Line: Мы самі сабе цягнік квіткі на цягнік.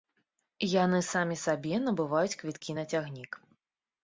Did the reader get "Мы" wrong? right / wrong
wrong